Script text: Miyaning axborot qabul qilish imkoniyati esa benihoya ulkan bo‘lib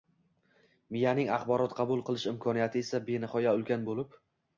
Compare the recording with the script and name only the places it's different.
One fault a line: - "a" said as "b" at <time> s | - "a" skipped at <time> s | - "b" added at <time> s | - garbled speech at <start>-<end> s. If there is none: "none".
none